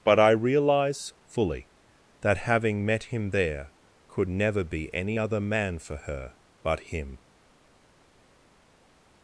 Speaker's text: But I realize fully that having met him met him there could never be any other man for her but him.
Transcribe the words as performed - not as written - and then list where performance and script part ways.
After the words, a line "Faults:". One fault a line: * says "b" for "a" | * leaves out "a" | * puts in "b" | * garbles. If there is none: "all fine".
But I realize fully that having met him there could never be any other man for her but him.
Faults:
* leaves out "met him"